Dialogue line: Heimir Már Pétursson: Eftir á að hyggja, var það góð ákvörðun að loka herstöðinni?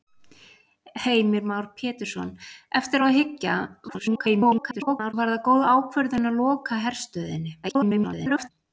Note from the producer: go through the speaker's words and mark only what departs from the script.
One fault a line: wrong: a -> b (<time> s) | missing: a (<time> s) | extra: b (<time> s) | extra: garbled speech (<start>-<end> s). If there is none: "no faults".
extra: garbled speech (3.9-5.1 s)
extra: garbled speech (7.6-8.5 s)